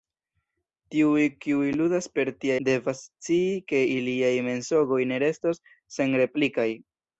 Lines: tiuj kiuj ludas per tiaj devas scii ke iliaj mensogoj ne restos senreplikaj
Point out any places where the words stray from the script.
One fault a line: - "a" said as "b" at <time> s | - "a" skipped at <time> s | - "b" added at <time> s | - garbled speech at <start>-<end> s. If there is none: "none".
none